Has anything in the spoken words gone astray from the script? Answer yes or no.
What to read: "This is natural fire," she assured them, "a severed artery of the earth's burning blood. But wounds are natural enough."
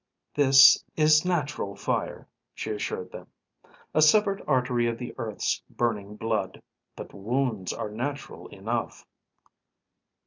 no